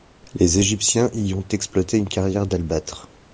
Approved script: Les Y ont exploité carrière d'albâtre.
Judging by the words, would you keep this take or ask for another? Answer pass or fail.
fail